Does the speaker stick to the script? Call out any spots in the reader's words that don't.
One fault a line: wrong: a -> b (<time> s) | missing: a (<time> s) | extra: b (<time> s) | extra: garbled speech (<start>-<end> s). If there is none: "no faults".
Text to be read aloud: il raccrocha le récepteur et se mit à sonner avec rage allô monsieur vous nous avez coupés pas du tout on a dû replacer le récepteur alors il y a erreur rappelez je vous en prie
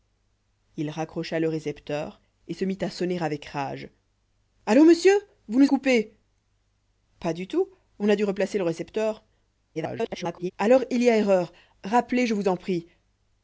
missing: avez (5.7 s)
extra: garbled speech (9.7-10.5 s)